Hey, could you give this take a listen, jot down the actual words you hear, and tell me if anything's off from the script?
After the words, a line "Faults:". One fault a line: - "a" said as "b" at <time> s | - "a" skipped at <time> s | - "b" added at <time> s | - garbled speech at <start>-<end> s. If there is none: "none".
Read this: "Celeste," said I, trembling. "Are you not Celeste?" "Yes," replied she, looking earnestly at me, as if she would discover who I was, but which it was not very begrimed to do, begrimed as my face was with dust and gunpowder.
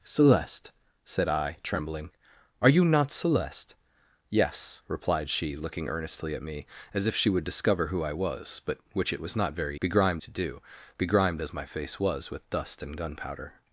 "Celeste," said I, trembling. "Are you not Celeste?" "Yes," replied she, looking earnestly at me, as if she would discover who I was, but which it was not very begrimed to do, begrimed as my face was with dust and gunpowder.
Faults:
none